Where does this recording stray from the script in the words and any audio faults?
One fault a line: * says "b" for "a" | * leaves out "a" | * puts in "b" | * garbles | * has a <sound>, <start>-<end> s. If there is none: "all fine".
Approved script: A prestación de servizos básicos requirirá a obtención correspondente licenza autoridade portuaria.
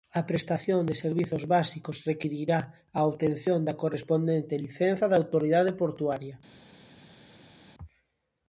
* puts in "da"
* puts in "da"